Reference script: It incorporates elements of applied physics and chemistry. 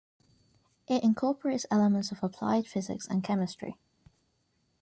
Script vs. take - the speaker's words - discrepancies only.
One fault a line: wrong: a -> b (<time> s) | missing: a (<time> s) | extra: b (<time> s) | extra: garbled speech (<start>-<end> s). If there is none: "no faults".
no faults